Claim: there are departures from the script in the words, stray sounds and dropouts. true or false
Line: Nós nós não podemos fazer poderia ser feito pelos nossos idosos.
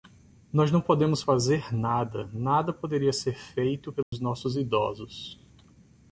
true